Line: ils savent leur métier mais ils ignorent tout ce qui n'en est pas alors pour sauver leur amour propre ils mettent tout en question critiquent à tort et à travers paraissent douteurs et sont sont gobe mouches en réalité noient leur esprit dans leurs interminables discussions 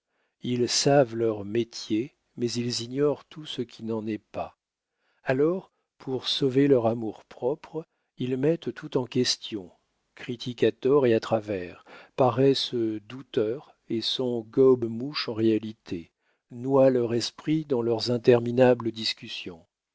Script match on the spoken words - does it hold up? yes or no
no